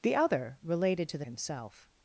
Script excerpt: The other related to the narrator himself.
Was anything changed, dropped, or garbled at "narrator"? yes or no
yes